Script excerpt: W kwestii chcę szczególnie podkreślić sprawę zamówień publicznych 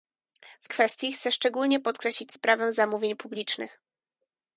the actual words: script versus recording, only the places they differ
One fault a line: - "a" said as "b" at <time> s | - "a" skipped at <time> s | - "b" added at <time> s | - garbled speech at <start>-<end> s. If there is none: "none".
none